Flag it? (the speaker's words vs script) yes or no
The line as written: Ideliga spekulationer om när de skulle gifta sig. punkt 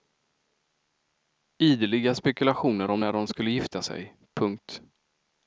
no